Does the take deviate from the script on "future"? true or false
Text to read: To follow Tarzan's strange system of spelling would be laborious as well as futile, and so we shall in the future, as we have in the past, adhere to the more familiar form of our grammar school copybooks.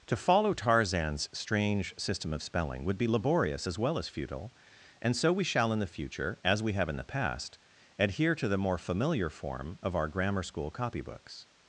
false